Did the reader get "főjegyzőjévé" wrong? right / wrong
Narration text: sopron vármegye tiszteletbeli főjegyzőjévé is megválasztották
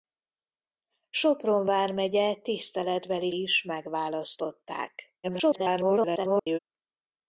wrong